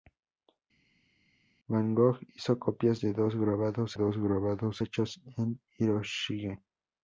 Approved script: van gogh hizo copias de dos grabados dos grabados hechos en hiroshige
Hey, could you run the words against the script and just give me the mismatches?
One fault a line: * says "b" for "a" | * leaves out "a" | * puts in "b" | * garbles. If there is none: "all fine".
all fine